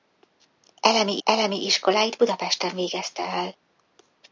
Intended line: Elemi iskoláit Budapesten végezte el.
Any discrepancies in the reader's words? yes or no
yes